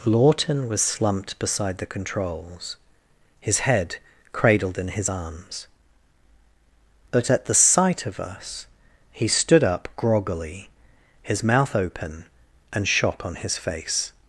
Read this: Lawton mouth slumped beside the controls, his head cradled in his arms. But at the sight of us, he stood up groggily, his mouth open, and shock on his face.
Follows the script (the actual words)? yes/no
no